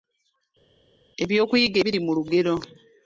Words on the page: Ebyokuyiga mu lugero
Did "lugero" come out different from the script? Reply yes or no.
no